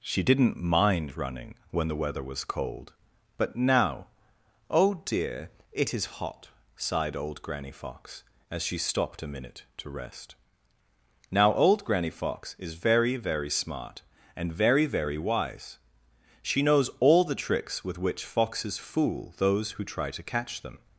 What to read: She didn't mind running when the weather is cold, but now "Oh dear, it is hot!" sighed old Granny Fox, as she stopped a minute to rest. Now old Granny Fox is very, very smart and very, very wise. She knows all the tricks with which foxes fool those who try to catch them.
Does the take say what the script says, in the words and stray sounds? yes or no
no